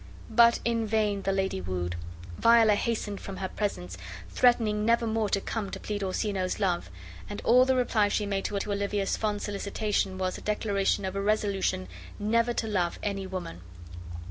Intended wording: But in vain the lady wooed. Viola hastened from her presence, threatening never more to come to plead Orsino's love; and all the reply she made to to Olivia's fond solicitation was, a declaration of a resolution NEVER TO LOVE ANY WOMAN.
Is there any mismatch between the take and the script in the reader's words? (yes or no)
no